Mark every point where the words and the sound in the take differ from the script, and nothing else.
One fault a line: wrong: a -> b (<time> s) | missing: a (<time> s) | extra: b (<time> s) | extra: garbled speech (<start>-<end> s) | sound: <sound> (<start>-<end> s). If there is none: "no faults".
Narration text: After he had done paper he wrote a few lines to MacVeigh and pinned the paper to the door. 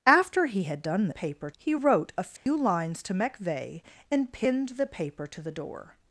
sound: dropout (2.4-2.5 s)